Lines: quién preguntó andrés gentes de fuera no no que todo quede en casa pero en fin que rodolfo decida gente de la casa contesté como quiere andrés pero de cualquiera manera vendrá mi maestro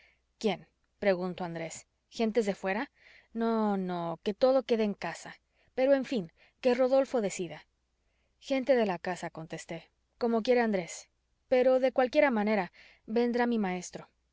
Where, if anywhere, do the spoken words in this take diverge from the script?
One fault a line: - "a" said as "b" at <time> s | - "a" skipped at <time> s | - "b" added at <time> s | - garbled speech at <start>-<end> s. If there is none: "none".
none